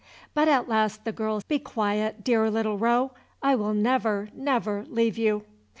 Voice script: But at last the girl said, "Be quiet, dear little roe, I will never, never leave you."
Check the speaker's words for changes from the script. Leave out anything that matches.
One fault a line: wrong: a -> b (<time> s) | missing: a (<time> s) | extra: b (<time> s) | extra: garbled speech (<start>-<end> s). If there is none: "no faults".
missing: said (1.4 s)